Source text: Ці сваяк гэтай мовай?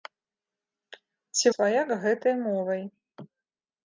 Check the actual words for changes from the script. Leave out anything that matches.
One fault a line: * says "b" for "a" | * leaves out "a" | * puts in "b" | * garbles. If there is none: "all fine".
all fine